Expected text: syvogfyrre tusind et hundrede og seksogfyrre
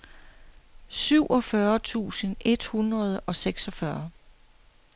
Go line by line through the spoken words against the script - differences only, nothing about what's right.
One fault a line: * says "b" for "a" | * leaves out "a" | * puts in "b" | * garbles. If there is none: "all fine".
all fine